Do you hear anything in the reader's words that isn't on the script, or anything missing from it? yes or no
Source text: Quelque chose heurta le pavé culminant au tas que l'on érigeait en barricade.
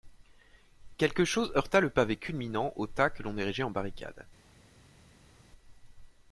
no